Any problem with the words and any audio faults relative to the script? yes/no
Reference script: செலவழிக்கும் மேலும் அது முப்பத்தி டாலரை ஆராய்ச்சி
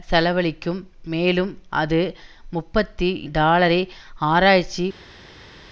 no